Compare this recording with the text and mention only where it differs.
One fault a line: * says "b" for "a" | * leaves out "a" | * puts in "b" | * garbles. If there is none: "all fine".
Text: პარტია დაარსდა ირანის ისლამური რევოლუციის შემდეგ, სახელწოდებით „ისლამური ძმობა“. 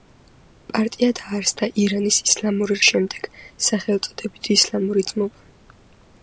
* leaves out "რევოლუციის"